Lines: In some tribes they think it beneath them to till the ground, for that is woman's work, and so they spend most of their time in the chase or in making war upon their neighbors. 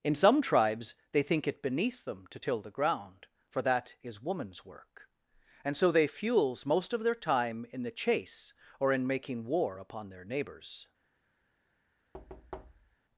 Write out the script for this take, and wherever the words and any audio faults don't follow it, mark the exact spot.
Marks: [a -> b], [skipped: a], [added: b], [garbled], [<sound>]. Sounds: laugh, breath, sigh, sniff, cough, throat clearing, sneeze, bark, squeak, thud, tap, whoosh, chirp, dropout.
In some tribes they think it beneath them to till the ground, for that is woman's work, and so they [spend -> fuels] most of their time in the chase or in making war upon their neighbors. [thud]